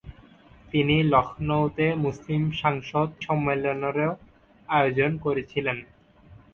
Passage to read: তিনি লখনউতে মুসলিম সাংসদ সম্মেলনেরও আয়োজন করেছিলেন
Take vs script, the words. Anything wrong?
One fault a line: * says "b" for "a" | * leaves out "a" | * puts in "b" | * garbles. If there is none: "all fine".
all fine